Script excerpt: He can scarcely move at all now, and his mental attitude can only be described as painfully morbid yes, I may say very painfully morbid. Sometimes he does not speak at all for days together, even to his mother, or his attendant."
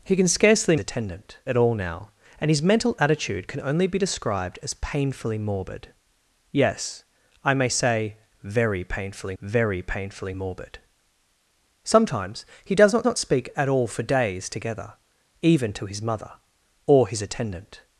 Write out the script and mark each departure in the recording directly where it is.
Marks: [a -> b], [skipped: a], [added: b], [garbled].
He can scarcely [move -> attendant] at all now, and his mental attitude can only be described as painfully morbid yes, I may say very painfully [added: very painfully] morbid. Sometimes he does not [added: not] speak at all for days together, even to his mother, or his attendant."